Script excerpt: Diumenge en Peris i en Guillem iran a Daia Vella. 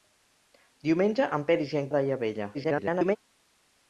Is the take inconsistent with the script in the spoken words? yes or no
yes